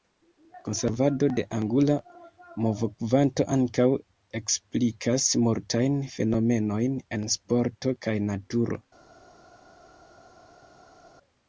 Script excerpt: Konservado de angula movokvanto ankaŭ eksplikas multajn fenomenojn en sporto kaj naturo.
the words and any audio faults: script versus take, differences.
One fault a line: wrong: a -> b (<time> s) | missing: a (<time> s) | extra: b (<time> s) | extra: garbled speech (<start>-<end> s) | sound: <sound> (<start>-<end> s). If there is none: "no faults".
no faults